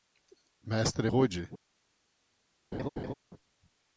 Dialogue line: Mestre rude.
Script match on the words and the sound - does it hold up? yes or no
no